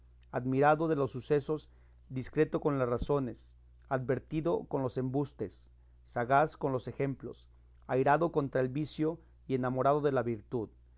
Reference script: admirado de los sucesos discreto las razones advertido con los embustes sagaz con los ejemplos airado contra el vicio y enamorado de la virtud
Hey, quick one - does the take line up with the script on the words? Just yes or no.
no